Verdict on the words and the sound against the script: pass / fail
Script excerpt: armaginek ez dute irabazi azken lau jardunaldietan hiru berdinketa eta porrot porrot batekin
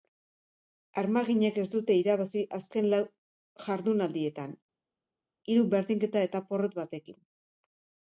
fail